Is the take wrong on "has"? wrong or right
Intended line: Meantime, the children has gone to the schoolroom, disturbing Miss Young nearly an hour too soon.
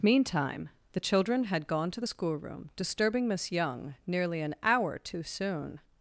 wrong